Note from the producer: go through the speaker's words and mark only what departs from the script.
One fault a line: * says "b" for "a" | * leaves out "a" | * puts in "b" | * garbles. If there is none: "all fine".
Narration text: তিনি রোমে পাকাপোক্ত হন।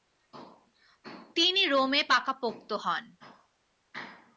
all fine